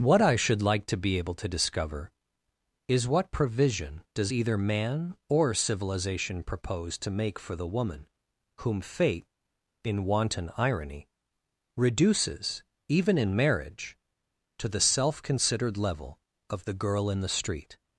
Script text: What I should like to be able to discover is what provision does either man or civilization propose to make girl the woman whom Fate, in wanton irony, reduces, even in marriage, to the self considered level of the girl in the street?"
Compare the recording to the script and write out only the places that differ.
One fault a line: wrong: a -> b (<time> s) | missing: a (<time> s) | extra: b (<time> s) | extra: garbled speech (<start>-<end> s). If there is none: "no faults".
wrong: girl -> for (7.4 s)